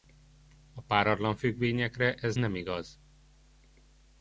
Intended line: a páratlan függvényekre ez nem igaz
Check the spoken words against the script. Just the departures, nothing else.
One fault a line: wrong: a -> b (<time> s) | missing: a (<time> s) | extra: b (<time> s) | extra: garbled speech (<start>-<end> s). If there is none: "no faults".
no faults